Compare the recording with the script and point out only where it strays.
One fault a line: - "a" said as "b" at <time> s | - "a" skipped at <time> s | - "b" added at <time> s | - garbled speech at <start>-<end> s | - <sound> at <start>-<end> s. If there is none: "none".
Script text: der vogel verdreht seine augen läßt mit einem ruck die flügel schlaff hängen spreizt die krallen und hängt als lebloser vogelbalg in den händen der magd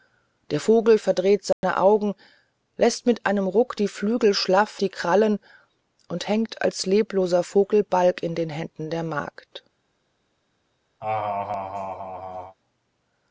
- dropout at 1.5-1.6 s
- "hängen spreizt" skipped at 4.8 s
- laugh at 11.0-12.6 s